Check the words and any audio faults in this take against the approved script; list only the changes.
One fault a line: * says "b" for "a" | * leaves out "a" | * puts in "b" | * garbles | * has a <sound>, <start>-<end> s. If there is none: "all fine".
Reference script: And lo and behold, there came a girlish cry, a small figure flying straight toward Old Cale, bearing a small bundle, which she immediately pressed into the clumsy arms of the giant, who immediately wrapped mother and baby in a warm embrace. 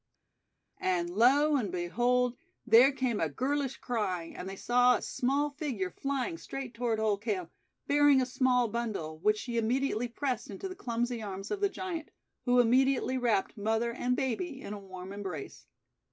* puts in "and they saw"